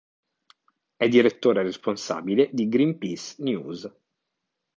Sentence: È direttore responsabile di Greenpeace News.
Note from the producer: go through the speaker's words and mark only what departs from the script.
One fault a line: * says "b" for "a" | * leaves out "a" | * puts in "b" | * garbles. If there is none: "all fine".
all fine